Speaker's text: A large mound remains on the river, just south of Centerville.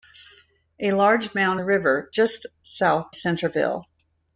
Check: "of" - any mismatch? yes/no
yes